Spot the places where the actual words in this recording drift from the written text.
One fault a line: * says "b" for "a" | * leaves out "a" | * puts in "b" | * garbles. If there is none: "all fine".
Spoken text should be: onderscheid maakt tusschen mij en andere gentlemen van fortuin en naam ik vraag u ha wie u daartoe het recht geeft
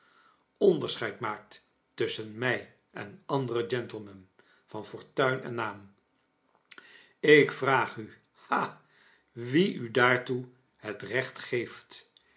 all fine